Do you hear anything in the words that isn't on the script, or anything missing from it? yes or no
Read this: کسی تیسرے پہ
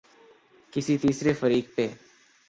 yes